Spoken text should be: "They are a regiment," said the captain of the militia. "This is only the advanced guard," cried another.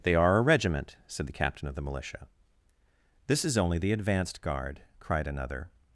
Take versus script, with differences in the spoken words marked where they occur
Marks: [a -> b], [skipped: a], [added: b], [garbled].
"They are a regiment," said the captain of the militia. "This is only the advanced guard," cried another.